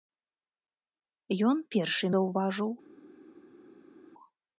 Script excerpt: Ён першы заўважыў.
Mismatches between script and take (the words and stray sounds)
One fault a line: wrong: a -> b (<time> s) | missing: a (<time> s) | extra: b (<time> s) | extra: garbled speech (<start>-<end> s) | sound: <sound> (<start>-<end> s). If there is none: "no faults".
no faults